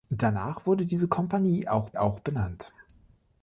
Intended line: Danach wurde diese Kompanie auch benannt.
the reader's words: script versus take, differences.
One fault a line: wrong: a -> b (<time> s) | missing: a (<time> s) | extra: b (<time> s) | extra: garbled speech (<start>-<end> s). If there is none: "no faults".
extra: auch (2.0 s)